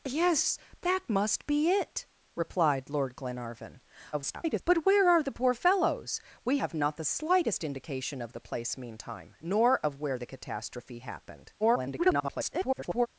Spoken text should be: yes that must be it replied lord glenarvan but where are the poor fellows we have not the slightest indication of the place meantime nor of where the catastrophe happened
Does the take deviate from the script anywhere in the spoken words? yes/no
yes